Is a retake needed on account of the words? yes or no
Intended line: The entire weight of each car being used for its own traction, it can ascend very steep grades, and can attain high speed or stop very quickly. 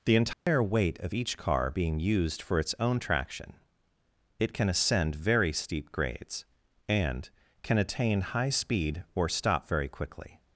no